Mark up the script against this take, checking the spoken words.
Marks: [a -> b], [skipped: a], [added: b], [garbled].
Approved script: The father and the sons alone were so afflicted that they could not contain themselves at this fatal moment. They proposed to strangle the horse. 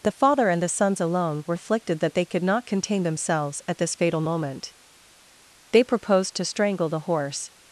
The father and the sons alone were [skipped: so] afflicted that they could not contain themselves at this fatal moment. They proposed to strangle the horse.